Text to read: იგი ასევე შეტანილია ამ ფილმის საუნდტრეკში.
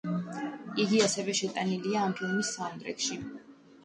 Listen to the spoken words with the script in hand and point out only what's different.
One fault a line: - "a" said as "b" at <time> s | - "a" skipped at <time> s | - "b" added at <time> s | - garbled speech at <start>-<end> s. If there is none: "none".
none